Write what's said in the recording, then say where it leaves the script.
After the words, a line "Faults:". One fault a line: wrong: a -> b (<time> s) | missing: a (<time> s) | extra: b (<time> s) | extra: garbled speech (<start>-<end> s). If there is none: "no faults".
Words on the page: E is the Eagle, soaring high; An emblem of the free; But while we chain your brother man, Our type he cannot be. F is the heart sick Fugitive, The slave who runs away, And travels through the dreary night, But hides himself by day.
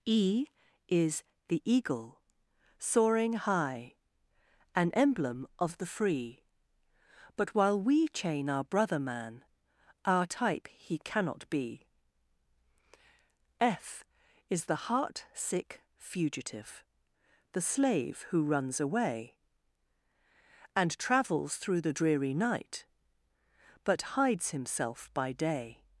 E is the Eagle, soaring high; An emblem of the free; But while we chain our brother man, Our type he cannot be. F is the heart sick Fugitive, The slave who runs away, And travels through the dreary night, But hides himself by day.
Faults:
wrong: your -> our (8.5 s)